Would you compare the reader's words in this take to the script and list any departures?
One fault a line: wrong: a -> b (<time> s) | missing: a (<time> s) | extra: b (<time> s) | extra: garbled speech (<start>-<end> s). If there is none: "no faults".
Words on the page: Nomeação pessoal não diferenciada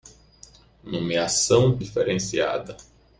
missing: pessoal não (1.8 s)